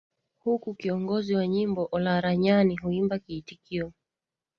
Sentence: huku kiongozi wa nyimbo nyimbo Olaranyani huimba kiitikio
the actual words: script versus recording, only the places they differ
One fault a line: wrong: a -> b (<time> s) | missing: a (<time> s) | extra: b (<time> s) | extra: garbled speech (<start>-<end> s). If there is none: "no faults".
missing: nyimbo (1.9 s)